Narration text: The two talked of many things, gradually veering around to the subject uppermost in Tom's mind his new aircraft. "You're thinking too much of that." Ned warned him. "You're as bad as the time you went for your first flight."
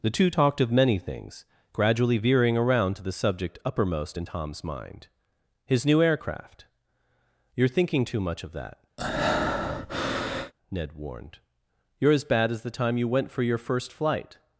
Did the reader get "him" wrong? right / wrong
wrong